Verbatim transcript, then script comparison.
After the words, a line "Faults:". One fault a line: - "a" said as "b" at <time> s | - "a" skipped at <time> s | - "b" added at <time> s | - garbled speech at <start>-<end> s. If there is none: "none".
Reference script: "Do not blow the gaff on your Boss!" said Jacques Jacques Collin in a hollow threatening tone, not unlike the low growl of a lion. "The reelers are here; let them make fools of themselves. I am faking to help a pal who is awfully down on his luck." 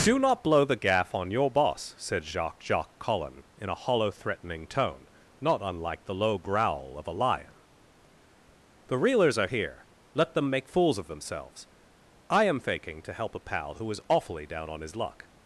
"Do not blow the gaff on your Boss!" said Jacques Jacques Collin in a hollow threatening tone, not unlike the low growl of a lion. "The reelers are here; let them make fools of themselves. I am faking to help a pal who is awfully down on his luck."
Faults:
none